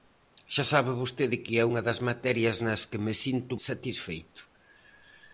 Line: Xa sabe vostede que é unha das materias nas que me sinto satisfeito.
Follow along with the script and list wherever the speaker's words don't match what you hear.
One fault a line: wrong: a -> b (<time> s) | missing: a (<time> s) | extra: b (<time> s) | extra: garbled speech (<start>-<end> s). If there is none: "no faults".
no faults